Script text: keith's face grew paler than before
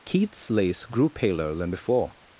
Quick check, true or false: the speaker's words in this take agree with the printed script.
false